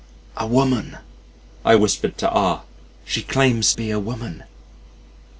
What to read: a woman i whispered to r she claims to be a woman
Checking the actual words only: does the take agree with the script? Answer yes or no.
no